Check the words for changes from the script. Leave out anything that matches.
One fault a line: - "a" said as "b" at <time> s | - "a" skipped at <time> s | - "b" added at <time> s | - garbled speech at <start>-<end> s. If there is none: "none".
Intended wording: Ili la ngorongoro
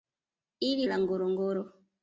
none